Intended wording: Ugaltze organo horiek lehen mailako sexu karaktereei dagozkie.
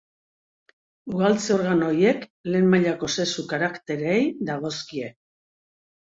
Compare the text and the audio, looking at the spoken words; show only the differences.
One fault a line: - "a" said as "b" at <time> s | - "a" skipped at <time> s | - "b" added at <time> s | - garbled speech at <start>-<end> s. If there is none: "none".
none